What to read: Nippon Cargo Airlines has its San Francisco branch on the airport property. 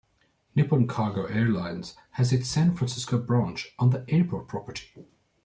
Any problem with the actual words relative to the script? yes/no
no